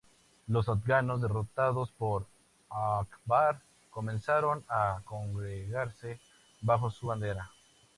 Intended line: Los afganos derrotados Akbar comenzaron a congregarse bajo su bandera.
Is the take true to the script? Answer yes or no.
no